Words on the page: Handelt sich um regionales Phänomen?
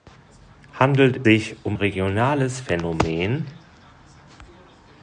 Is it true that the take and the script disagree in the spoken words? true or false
false